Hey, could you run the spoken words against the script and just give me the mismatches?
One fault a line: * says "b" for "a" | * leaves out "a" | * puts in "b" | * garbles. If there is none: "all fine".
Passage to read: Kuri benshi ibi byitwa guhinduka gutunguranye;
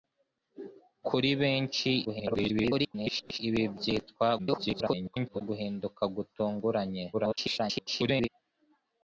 * garbles
* garbles
* garbles